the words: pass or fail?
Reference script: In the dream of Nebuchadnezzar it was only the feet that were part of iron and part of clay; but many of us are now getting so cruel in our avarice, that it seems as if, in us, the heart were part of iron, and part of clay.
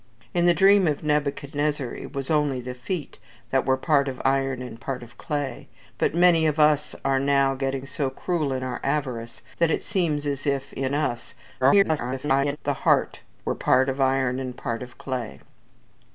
fail